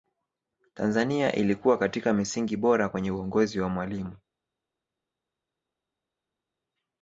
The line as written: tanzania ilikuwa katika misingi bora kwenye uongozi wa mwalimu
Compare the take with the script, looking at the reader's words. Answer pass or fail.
pass